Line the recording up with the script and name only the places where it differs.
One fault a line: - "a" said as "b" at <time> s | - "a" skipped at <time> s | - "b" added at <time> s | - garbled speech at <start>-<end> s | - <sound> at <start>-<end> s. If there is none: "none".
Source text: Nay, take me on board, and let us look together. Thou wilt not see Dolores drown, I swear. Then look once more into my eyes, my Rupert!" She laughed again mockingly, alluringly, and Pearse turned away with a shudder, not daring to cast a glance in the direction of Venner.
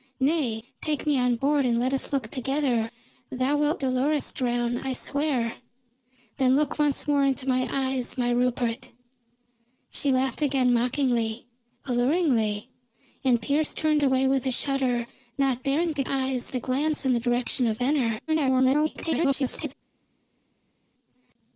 - "not see" skipped at 3.8 s
- "cast" said as "eyes" at 16.1 s
- garbled speech at 18.3-19.7 s